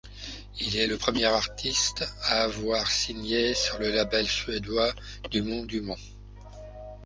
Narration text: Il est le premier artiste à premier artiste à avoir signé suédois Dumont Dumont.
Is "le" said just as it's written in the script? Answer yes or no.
yes